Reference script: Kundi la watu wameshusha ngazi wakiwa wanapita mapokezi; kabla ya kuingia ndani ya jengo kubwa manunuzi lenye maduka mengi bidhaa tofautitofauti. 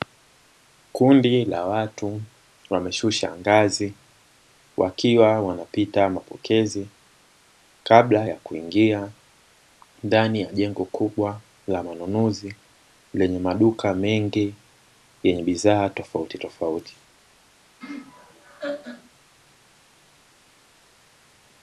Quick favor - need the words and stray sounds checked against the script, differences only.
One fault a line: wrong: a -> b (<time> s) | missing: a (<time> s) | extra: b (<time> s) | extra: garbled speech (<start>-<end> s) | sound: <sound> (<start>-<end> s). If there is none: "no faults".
extra: la (11.7 s)
extra: yenye (15.2 s)
sound: laugh (17.8-19.1 s)